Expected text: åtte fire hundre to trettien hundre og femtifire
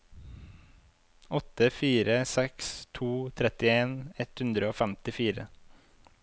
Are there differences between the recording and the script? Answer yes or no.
yes